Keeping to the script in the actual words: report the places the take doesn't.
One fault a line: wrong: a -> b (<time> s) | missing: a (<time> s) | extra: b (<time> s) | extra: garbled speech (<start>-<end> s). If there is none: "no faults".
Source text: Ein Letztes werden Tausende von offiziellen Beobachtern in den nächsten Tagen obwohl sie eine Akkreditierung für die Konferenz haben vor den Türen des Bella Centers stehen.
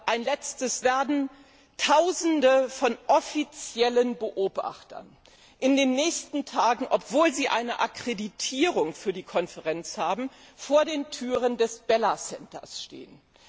no faults